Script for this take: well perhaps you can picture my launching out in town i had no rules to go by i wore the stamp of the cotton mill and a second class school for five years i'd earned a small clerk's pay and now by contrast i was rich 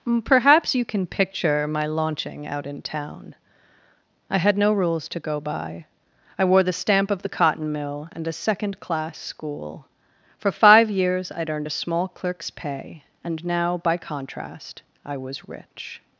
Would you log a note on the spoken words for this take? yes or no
yes